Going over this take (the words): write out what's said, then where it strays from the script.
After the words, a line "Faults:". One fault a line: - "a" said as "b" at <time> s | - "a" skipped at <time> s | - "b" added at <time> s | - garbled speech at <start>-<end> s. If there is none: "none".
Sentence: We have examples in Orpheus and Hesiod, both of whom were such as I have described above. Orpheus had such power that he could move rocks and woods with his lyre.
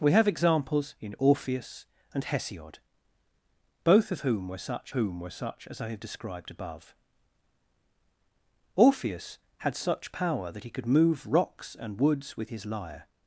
We have examples in Orpheus and Hesiod, both of whom were such whom were such as I have described above. Orpheus had such power that he could move rocks and woods with his lyre.
Faults:
- "whom were such" added at 4.9 s